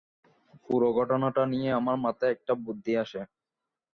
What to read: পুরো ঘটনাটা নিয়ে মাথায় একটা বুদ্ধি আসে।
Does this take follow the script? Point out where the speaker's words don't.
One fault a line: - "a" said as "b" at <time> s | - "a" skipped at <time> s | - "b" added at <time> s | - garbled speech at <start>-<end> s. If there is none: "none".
- "আমার" added at 1.8 s